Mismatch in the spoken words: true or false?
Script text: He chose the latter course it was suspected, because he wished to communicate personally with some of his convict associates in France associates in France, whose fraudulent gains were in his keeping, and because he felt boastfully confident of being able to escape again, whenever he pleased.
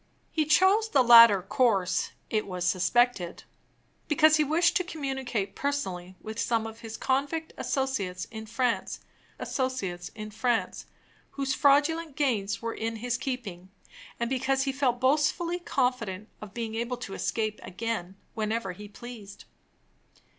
false